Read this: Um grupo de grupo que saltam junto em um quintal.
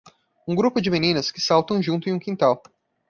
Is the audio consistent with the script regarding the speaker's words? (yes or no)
no